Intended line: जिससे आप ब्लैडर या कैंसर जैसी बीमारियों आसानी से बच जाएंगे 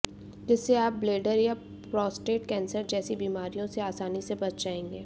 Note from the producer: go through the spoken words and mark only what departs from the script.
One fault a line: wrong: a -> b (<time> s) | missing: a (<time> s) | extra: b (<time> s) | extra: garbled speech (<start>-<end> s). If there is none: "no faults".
extra: प्रोस्टेट (1.9 s)
extra: से (3.7 s)